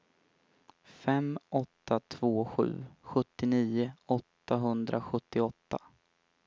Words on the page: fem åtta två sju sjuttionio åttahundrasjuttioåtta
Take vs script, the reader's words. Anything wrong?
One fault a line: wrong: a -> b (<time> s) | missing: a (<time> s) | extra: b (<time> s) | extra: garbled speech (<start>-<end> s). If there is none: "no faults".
no faults